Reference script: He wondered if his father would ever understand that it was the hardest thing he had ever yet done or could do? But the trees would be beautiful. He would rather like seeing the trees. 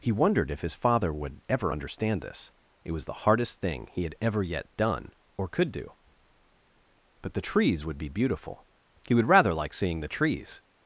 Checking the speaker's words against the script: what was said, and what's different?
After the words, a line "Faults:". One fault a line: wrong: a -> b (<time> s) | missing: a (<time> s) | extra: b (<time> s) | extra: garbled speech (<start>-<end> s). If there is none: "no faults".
He wondered if his father would ever understand this it was the hardest thing he had ever yet done or could do? But the trees would be beautiful. He would rather like seeing the trees.
Faults:
wrong: that -> this (2.2 s)